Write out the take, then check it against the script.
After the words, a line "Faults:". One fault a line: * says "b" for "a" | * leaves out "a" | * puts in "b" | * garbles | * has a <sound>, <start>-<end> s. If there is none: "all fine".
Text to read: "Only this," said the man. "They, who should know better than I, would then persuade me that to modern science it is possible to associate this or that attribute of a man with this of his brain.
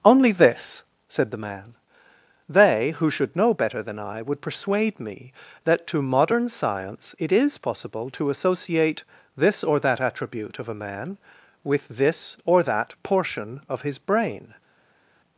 "Only this," said the man. "They, who should know better than I, would persuade me that to modern science it is possible to associate this or that attribute of a man with this or that portion of his brain.
Faults:
* leaves out "then"
* puts in "or that portion"